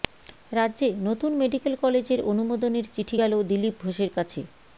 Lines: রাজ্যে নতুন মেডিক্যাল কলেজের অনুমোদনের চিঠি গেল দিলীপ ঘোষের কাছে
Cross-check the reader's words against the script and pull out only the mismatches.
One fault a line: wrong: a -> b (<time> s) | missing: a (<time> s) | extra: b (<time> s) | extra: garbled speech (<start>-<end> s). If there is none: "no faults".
no faults